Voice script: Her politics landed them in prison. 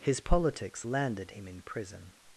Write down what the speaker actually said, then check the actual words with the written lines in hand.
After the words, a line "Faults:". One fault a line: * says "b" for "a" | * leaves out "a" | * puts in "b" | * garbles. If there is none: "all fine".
His politics landed him in prison.
Faults:
* says "His" for "Her"
* says "him" for "them"